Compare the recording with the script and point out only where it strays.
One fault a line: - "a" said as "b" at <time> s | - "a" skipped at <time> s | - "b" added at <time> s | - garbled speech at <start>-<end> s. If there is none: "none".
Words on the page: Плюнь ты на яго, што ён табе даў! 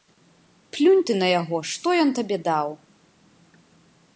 none